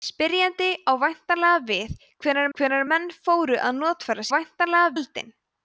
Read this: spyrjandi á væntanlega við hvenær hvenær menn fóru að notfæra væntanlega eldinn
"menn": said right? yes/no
yes